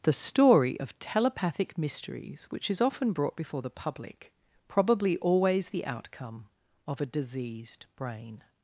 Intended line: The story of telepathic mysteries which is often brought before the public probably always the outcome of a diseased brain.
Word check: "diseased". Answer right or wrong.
right